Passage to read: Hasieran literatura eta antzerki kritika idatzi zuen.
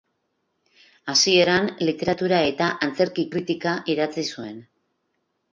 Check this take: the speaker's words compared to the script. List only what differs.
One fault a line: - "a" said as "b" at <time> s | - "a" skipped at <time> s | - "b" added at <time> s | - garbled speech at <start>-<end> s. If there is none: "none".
none